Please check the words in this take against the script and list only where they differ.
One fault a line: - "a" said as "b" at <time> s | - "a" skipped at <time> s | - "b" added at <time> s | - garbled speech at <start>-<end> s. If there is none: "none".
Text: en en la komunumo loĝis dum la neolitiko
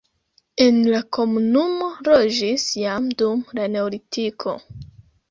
- "en" skipped at 0.8 s
- "jam" added at 2.8 s